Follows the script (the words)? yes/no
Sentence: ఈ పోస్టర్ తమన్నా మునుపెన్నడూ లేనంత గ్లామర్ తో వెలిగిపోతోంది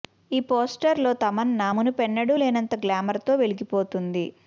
no